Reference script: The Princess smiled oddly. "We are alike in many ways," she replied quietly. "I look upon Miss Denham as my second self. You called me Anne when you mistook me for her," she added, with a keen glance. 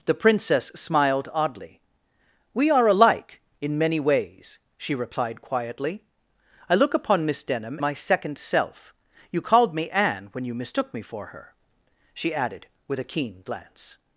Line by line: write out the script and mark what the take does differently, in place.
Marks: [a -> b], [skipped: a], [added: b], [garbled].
The Princess smiled oddly. "We are alike in many ways," she replied quietly. "I look upon Miss Denham [skipped: as] my second self. You called me Anne when you mistook me for her," she added, with a keen glance.